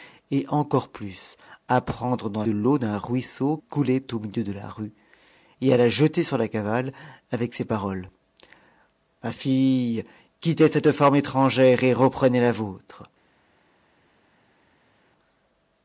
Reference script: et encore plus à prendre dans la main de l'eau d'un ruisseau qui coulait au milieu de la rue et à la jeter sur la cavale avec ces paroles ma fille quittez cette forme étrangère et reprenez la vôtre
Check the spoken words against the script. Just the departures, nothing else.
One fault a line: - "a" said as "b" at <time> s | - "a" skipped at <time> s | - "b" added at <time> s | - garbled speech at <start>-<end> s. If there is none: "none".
- "la main" skipped at 2.4 s
- "qui" skipped at 3.6 s